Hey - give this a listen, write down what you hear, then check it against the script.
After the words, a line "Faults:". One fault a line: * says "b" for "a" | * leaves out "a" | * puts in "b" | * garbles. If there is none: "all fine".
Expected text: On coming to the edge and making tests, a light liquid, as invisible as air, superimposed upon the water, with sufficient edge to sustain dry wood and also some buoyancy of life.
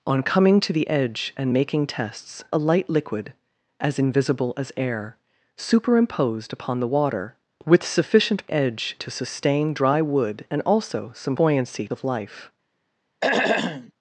On coming to the edge and making tests, a light liquid, as invisible as air, superimposed upon the water, with sufficient edge to sustain dry wood and also some buoyancy of life.
Faults:
all fine